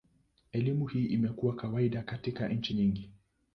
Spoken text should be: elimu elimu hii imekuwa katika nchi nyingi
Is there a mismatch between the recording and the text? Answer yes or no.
yes